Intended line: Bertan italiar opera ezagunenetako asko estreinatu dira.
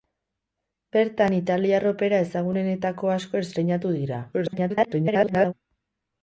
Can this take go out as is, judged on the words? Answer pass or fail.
fail